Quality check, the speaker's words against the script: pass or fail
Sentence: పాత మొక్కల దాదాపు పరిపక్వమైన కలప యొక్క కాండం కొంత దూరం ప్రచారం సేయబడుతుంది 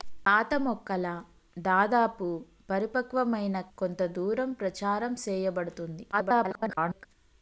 fail